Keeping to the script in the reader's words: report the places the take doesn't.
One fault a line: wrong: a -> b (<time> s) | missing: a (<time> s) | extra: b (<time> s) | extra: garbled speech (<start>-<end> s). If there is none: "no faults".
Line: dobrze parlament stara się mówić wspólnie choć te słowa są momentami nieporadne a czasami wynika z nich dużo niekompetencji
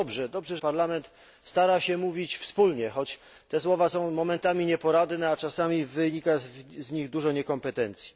no faults